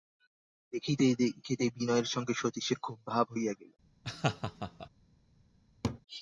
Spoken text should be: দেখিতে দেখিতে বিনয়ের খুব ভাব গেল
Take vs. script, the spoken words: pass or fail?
fail